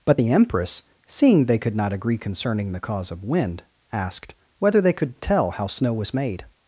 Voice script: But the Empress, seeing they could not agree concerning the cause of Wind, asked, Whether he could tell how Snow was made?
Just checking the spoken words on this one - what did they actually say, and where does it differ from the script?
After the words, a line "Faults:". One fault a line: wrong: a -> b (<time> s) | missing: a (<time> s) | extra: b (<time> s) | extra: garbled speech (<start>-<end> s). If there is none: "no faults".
But the Empress, seeing they could not agree concerning the cause of Wind, asked, Whether they could tell how Snow was made?
Faults:
wrong: he -> they (4.8 s)